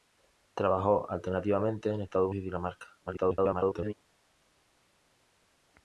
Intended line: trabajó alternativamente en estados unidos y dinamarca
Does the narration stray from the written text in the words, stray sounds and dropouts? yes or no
yes